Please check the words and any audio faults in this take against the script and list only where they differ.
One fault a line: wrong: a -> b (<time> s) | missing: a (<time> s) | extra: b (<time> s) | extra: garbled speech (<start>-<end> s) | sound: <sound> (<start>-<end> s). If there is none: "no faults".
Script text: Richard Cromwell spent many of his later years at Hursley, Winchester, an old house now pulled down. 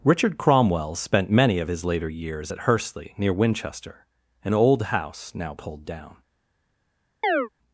extra: near (3.2 s)
sound: chirp (7.2-7.5 s)